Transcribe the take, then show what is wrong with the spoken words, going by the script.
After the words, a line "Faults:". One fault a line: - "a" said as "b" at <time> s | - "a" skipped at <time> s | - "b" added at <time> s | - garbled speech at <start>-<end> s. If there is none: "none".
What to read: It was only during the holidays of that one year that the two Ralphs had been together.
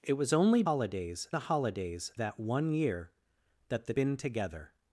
It was only holidays the holidays that one year that the been together.
Faults:
- "during" said as "holidays" at 0.6 s
- "of" skipped at 2.1 s
- "two Ralphs had" skipped at 3.9 s